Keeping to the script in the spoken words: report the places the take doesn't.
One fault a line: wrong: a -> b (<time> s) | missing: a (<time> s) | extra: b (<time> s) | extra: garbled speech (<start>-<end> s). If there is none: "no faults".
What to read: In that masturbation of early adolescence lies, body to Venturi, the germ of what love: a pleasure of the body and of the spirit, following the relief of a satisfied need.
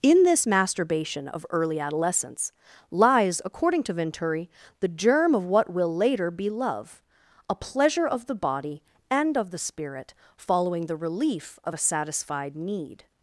wrong: that -> this (0.2 s)
wrong: body -> according (3.5 s)
extra: will later be (5.7 s)